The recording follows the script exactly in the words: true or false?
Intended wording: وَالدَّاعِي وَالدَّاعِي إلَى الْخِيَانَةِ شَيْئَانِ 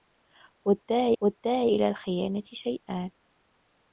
true